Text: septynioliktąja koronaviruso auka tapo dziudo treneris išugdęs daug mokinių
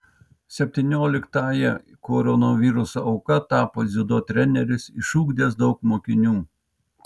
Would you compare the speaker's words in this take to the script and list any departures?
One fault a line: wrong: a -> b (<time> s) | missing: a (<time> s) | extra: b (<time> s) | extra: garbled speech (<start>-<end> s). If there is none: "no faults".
no faults